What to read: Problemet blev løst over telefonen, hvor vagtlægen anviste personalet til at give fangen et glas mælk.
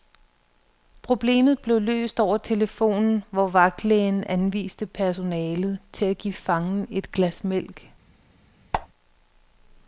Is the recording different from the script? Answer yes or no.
no